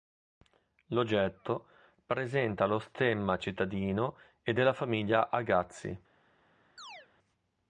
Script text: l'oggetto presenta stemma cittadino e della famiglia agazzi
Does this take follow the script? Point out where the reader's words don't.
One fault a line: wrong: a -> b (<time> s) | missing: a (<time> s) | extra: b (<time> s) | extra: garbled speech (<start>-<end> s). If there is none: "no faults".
extra: lo (2.6 s)